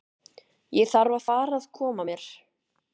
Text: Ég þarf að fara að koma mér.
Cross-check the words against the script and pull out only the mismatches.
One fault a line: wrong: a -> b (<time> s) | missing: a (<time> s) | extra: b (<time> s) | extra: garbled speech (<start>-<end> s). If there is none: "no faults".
no faults